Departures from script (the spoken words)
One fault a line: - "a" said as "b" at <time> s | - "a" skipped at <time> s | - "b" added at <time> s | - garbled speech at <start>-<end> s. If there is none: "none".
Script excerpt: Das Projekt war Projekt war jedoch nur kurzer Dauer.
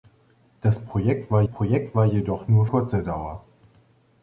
none